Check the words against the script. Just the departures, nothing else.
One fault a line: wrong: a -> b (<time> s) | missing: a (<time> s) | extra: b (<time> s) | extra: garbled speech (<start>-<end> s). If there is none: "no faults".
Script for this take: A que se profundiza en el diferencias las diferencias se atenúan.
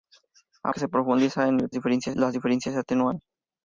no faults